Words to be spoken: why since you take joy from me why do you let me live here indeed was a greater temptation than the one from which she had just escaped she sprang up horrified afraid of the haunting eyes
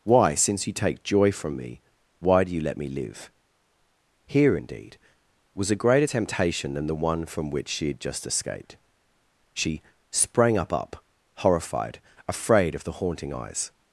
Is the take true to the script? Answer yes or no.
no